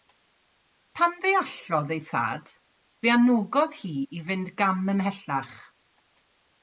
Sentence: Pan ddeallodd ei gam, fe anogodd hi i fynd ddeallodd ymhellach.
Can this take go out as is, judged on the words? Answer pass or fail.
fail